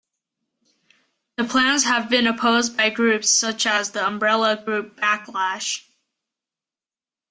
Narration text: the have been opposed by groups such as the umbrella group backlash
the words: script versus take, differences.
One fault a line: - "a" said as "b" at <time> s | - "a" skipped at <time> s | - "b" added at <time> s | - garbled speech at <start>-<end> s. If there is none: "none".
- "plans" added at 1.4 s